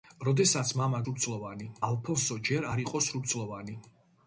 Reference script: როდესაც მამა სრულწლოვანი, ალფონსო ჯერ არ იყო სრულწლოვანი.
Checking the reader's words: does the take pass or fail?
pass